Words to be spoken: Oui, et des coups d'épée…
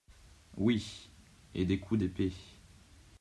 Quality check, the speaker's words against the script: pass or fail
pass